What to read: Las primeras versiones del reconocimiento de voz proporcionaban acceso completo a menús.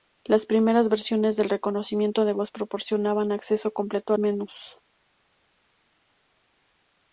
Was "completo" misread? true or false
false